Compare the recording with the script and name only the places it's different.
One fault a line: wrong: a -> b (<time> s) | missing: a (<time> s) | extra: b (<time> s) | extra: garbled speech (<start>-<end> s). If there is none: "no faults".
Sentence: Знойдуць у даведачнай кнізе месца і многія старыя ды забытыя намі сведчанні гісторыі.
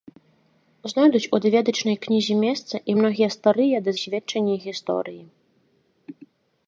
missing: забытыя намі (4.0 s)